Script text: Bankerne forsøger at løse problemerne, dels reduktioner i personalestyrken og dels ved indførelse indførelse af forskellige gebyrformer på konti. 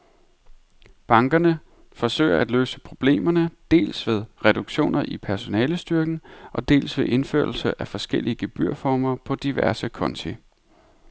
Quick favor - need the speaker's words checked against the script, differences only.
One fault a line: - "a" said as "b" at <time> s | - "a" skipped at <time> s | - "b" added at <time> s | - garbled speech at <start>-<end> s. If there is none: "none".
- "ved" added at 4.1 s
- "indførelse" skipped at 7.8 s
- "diverse" added at 9.3 s